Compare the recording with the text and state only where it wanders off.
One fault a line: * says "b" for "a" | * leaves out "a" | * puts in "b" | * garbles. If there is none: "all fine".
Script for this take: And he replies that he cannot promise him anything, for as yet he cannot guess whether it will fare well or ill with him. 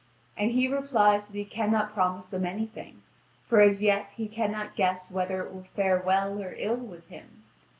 * says "them" for "him"